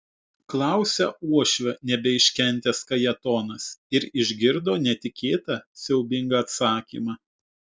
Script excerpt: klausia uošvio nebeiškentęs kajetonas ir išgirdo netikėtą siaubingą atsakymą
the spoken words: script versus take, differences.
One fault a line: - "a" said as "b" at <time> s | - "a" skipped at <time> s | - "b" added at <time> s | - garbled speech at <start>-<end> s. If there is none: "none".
none